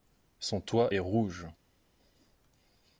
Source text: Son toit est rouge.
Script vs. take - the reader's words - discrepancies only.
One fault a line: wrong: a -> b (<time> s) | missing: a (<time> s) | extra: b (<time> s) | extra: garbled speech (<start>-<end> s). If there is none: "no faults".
no faults